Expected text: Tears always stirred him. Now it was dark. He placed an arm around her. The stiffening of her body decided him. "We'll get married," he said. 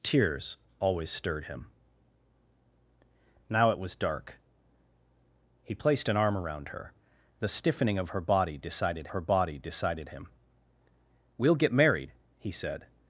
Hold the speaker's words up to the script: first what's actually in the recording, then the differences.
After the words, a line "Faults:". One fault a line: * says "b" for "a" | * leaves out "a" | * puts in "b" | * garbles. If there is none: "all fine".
Tears always stirred him. Now it was dark. He placed an arm around her. The stiffening of her body decided her body decided him. "We'll get married," he said.
Faults:
* puts in "her body decided"